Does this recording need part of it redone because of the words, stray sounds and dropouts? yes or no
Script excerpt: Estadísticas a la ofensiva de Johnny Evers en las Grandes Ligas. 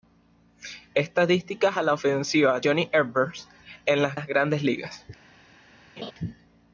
yes